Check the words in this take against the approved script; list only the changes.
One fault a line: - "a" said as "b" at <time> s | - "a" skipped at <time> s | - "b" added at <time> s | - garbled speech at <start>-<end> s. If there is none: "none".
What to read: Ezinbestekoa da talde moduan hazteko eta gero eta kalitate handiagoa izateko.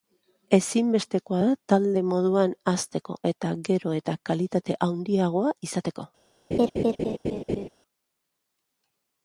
none